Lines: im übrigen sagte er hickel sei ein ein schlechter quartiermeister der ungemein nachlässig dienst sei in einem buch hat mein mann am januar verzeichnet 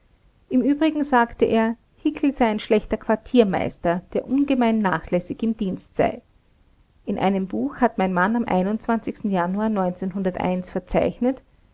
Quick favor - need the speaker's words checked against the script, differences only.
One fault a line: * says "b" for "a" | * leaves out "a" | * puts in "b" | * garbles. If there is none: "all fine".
* leaves out "ein"
* puts in "im"